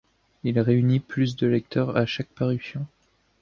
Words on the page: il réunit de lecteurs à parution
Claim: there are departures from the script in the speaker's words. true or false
true